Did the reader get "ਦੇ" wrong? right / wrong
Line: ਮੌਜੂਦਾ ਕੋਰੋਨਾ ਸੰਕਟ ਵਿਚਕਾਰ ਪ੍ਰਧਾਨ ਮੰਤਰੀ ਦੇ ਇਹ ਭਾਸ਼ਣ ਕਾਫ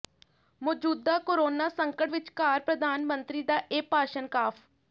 wrong